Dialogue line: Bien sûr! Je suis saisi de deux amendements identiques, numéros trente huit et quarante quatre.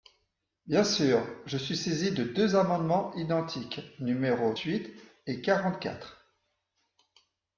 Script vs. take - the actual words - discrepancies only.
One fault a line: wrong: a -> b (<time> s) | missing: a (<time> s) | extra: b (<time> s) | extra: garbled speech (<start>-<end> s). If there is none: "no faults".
missing: trente (4.5 s)